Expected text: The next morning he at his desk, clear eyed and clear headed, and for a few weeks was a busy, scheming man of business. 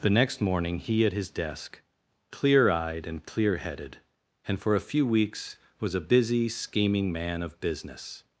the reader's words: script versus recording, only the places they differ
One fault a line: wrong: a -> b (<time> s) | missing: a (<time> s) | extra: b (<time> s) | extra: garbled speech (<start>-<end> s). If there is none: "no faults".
no faults